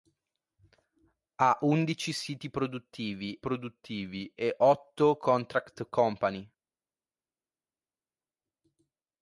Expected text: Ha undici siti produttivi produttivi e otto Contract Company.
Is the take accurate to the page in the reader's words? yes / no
yes